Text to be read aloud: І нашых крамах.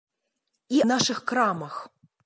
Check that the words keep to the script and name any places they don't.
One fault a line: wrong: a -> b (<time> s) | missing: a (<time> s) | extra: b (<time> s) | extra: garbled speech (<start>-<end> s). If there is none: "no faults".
no faults